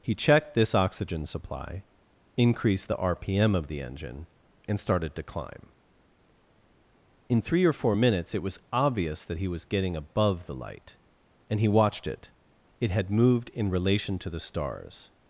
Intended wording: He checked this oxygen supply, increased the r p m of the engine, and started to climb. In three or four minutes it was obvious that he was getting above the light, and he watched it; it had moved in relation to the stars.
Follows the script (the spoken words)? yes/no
yes